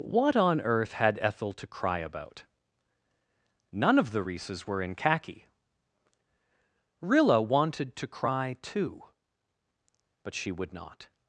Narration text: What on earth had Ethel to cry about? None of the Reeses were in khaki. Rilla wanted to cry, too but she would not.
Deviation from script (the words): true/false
false